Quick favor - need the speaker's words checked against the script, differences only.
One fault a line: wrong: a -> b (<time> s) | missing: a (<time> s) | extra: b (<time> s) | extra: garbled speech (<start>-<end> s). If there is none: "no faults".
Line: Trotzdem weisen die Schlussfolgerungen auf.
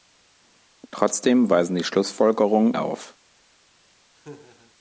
no faults